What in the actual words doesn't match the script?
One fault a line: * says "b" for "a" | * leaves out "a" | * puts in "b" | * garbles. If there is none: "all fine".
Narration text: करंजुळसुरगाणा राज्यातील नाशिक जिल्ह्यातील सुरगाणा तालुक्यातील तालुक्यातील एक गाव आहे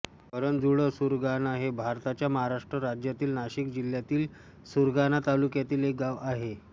* puts in "हे भारताच्या महाराष्ट्र"
* leaves out "तालुक्यातील"